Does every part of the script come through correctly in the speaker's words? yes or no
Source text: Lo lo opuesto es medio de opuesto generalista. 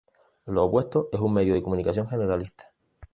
no